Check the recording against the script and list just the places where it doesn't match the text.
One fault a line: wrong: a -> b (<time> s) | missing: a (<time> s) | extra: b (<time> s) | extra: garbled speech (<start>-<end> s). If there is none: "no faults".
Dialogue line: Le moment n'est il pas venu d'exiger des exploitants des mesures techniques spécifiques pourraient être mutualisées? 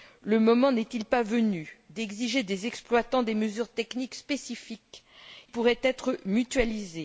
no faults